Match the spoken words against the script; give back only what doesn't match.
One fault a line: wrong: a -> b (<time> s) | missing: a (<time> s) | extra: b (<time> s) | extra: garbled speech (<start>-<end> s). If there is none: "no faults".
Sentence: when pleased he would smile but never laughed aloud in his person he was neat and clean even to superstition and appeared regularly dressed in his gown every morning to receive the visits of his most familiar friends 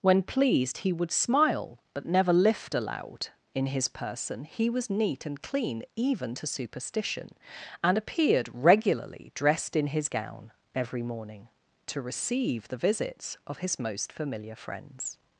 wrong: laughed -> lift (2.3 s)